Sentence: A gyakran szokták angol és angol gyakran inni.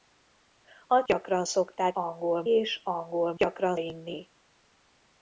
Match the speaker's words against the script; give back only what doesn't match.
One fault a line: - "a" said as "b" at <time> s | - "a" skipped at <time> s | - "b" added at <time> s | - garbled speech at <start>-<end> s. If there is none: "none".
none